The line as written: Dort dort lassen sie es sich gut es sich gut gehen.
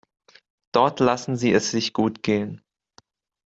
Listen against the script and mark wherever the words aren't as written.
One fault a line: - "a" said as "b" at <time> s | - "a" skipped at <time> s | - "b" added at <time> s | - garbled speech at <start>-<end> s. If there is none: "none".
- "dort" skipped at 1.0 s
- "es sich gut" skipped at 2.2 s